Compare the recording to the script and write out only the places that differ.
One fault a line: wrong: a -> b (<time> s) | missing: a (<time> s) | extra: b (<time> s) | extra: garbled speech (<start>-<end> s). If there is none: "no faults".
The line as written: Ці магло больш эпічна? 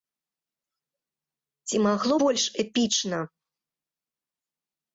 no faults